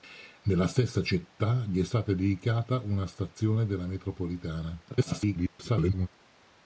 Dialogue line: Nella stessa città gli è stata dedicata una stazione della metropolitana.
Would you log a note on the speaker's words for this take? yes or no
yes